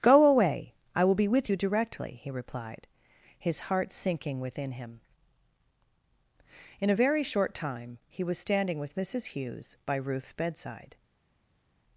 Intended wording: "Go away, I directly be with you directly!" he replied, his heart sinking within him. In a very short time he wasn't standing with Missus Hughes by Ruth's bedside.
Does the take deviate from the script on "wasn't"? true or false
true